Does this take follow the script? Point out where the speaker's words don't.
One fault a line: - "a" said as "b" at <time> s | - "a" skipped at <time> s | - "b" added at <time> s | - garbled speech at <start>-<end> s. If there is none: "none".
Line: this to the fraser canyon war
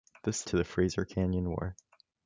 none